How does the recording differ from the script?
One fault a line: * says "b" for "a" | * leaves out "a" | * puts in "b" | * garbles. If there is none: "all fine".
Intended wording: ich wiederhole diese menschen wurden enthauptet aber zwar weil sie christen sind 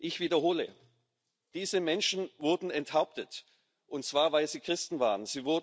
* says "und" for "aber"
* says "waren" for "sind"